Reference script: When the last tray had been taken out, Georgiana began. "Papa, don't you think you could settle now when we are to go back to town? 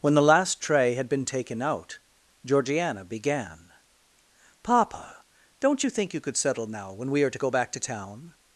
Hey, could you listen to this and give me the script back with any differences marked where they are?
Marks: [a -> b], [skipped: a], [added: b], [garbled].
When the last tray had been taken out, Georgiana began. "Papa, don't you think you could settle now when we are to go back to town?